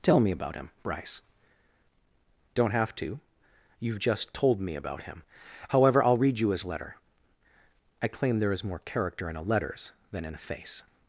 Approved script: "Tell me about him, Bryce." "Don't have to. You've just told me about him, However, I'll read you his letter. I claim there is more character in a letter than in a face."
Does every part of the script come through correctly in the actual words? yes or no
no